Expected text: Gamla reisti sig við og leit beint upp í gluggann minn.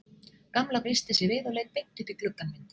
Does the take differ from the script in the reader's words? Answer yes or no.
no